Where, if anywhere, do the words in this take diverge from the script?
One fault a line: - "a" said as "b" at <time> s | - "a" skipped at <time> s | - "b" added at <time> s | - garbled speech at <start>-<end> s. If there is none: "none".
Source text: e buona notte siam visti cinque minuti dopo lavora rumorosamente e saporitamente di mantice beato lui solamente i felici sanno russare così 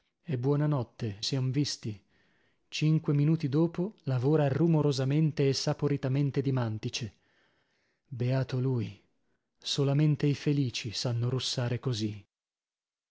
none